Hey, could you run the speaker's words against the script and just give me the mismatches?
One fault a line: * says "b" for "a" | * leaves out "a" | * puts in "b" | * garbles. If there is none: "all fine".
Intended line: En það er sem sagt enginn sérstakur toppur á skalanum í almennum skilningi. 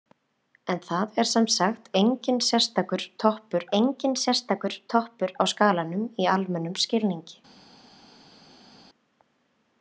* puts in "enginn sérstakur toppur"